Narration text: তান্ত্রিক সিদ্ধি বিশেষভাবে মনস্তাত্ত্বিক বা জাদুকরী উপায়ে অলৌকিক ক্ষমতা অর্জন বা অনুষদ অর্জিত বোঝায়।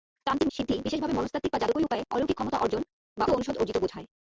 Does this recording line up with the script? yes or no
yes